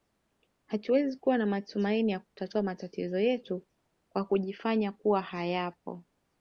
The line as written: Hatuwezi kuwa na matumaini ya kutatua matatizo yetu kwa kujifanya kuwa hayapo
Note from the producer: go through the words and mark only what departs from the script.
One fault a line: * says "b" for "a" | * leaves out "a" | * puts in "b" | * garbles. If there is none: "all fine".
all fine